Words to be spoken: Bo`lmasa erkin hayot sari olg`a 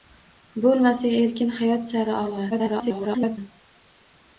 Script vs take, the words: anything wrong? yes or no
yes